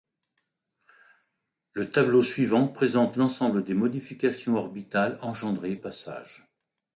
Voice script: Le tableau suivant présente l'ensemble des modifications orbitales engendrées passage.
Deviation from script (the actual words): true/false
false